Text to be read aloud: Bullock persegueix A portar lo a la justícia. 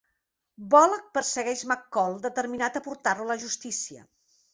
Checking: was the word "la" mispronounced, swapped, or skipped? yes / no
no